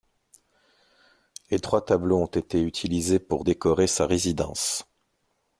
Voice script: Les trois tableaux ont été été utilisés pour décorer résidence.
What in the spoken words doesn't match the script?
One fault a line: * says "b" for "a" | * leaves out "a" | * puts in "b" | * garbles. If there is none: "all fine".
* leaves out "été"
* puts in "sa"